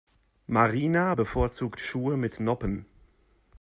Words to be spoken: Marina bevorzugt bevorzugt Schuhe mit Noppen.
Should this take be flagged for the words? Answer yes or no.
yes